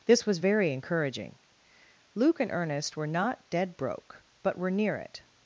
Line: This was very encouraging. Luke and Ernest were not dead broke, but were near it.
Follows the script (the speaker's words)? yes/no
yes